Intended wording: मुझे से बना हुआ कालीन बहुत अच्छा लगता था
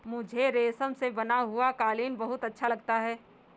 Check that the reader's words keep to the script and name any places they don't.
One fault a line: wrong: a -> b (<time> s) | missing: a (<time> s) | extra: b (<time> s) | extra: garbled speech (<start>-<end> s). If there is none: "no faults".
extra: रेशम (0.5 s)
wrong: था -> है (3.0 s)